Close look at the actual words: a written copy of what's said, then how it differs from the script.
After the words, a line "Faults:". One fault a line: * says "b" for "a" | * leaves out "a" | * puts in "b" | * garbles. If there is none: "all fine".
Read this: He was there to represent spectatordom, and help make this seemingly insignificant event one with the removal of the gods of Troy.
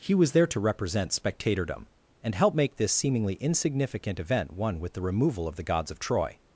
He was there to represent spectatordom, and help make this seemingly insignificant event one with the removal of the gods of Troy.
Faults:
all fine